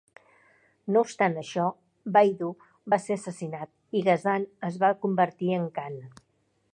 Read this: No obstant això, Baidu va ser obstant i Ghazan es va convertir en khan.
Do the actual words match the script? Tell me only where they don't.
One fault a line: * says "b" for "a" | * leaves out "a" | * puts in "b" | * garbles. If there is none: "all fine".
* says "assassinat" for "obstant"